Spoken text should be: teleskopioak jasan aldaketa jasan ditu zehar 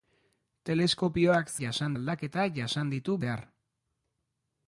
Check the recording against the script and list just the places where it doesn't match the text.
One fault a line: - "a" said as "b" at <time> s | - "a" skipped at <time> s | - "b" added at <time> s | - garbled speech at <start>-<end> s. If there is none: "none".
none